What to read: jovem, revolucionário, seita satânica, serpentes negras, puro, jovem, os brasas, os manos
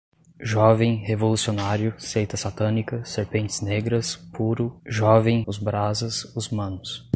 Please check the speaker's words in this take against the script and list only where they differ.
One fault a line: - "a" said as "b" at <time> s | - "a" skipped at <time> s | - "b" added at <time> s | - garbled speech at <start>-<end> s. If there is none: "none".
none